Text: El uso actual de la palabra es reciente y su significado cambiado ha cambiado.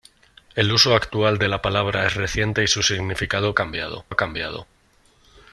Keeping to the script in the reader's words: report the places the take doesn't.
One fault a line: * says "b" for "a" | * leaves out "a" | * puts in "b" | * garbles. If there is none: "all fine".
all fine